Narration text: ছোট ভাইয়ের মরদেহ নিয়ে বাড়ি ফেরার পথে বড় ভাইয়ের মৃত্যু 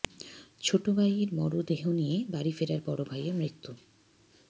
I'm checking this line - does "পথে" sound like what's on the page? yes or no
no